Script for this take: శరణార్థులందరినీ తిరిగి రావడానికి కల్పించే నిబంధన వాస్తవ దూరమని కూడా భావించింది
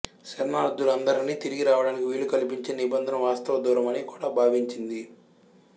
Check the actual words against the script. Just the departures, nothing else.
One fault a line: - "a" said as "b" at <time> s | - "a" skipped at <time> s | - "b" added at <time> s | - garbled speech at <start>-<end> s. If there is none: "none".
- "వీలు" added at 2.0 s